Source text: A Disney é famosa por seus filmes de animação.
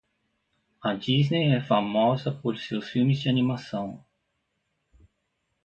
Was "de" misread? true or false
false